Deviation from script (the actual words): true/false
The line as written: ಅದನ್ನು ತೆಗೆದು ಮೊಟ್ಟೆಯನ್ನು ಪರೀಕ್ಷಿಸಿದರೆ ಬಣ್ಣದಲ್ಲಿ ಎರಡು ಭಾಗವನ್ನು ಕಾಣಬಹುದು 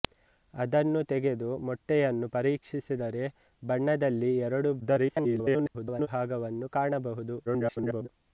true